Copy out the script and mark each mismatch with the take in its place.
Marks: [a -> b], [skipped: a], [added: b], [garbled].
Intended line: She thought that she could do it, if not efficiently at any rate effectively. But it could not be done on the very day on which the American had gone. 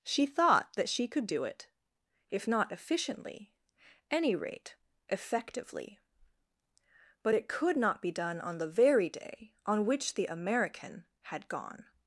She thought that she could do it, if not efficiently [skipped: at] any rate effectively. But it could not be done on the very day on which the American had gone.